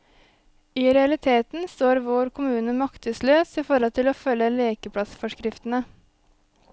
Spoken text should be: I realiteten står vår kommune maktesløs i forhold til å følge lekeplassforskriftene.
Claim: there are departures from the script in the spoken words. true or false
false